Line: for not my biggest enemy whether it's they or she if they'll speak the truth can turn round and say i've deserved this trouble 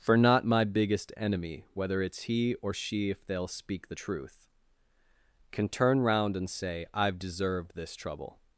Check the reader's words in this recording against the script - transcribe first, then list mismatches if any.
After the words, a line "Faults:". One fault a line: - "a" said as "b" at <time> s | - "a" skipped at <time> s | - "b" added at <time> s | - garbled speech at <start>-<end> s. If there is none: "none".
for not my biggest enemy whether it's he or she if they'll speak the truth can turn round and say i've deserved this trouble
Faults:
- "they" said as "he" at 2.2 s